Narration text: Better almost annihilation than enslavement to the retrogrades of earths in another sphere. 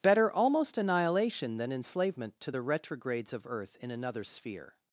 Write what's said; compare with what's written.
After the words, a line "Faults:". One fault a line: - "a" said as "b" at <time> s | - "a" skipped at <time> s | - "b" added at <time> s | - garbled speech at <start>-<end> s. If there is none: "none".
Better almost annihilation than enslavement to the retrogrades of earth in another sphere.
Faults:
- "earths" said as "earth" at 3.4 s